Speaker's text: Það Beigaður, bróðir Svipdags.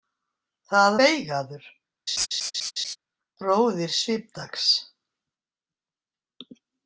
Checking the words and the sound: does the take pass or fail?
fail